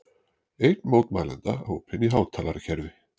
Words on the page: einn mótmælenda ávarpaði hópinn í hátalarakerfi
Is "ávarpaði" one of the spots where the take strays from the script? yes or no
yes